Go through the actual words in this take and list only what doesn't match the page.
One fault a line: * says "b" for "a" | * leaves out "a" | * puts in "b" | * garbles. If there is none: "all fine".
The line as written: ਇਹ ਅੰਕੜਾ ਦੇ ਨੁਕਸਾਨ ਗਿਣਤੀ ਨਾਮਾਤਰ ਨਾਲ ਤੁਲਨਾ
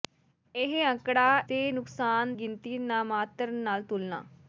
all fine